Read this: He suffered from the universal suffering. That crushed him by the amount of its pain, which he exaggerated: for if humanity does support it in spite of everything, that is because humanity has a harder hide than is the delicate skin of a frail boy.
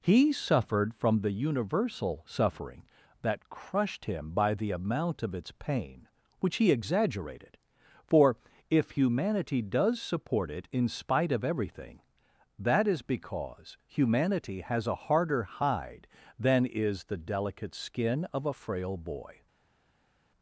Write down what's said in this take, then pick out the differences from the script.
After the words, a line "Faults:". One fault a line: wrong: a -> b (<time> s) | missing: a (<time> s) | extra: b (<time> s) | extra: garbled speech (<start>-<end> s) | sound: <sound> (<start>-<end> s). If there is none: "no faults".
He suffered from the universal suffering. That crushed him by the amount of its pain, which he exaggerated: for if humanity does support it in spite of everything, that is because humanity has a harder hide than is the delicate skin of a frail boy.
Faults:
no faults